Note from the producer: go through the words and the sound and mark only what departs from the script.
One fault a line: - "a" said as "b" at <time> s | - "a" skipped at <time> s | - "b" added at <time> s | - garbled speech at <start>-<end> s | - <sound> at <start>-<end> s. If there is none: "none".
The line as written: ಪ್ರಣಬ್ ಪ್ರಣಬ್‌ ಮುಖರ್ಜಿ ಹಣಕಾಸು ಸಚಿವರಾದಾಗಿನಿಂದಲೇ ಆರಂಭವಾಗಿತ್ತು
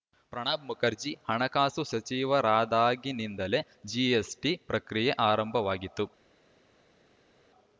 - "ಪ್ರಣಬ್" skipped at 0.6 s
- "ಜಿಎಸ್‌ಟಿ ಪ್ರಕ್ರಿಯೆ" added at 3.9 s